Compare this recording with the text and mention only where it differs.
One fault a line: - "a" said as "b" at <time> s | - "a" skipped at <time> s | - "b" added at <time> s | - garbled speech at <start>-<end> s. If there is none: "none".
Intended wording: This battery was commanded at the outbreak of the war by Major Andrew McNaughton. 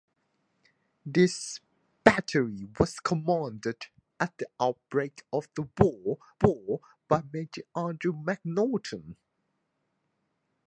- "war" added at 6.4 s